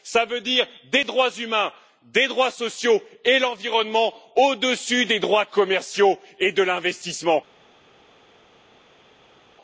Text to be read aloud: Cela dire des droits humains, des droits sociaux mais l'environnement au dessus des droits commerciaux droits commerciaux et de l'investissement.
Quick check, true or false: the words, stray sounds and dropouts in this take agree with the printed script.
false